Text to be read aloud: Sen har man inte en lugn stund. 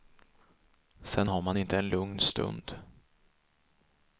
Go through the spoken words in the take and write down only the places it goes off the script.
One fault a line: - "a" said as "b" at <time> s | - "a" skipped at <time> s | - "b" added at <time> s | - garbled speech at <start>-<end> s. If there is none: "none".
none